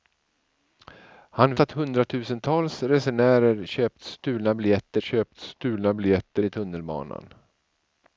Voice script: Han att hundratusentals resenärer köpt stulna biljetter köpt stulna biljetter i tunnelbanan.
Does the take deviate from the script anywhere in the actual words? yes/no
no